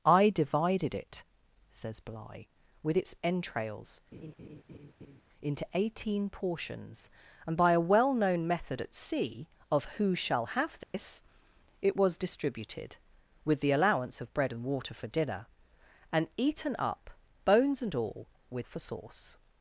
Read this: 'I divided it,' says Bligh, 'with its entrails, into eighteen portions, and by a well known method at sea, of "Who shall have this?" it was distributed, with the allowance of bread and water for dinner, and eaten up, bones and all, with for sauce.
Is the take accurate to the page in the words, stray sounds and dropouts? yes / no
no